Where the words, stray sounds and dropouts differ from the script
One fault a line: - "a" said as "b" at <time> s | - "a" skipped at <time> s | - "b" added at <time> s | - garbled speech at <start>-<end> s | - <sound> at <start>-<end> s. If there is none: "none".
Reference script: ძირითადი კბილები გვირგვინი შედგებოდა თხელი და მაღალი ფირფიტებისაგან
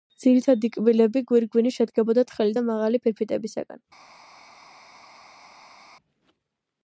none